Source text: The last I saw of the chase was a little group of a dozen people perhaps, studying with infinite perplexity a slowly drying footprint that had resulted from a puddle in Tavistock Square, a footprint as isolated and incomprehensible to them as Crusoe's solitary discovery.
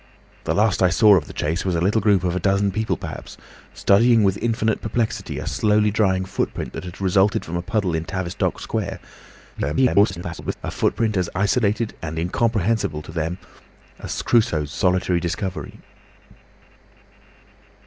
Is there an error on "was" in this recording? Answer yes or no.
no